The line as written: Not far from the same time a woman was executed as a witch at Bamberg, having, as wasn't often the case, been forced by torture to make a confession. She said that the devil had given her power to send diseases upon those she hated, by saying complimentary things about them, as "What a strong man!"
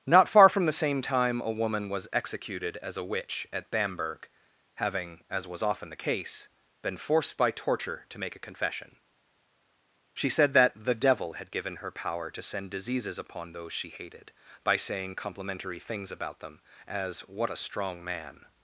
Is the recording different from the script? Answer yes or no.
yes